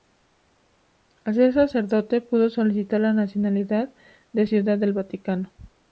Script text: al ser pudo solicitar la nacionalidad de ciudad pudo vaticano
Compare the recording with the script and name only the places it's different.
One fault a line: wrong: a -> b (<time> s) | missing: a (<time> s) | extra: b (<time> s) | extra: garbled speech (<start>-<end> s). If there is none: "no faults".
extra: sacerdote (1.5 s)
wrong: pudo -> del (4.8 s)